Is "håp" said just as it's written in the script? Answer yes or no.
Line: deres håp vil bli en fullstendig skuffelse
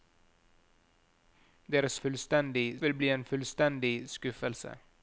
no